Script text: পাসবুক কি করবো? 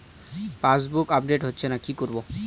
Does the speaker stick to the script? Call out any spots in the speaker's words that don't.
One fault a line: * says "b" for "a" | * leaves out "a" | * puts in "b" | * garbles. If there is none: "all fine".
* puts in "আপডেট হচ্ছেনা"